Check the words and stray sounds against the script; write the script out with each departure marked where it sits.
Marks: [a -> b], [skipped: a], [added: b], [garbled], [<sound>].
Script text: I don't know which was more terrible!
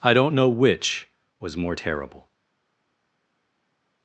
I don't know which was more terrible!